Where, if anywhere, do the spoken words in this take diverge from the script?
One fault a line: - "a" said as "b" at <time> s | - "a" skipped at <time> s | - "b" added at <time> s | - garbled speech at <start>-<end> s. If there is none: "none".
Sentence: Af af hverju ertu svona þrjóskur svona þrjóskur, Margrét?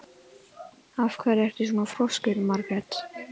- "af" skipped at 1.2 s
- "svona þrjóskur" skipped at 2.4 s